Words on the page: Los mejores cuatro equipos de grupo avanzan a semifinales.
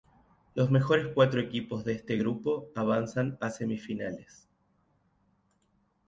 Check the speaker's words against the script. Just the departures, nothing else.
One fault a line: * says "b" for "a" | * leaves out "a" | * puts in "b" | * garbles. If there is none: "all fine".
* puts in "este"